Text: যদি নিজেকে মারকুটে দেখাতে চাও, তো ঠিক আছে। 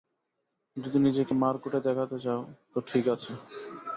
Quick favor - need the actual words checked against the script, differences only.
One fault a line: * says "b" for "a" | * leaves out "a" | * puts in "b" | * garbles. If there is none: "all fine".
all fine